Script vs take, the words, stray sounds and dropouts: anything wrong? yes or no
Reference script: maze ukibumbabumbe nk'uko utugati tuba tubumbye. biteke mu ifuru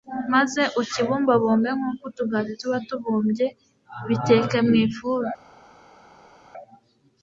no